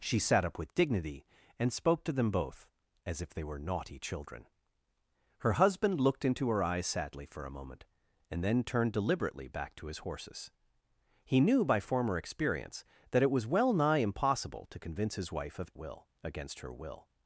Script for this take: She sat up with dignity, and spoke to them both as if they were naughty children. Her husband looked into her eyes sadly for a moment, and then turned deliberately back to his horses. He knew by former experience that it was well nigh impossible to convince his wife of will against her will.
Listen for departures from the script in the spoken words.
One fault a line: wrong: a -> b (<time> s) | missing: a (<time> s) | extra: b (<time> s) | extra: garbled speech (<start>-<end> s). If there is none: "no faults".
no faults